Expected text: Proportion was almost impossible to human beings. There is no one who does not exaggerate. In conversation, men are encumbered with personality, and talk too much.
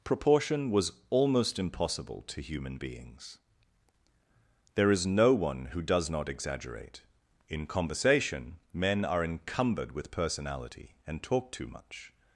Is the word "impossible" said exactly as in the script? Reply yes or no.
yes